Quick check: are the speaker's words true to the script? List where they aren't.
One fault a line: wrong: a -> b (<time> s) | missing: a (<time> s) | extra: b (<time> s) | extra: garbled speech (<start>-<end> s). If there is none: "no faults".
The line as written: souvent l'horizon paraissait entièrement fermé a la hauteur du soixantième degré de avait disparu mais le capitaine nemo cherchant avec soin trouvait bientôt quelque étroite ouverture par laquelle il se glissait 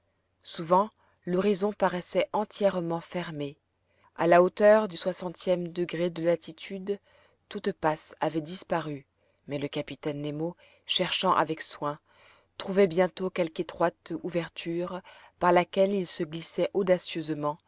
extra: latitude toute passe (6.2 s)